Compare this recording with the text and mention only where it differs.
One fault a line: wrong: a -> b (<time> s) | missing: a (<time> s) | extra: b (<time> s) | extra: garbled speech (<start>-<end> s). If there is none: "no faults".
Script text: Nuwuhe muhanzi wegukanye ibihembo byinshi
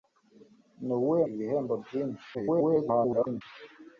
missing: muhanzi wegukanye (1.2 s)
extra: garbled speech (2.3-3.4 s)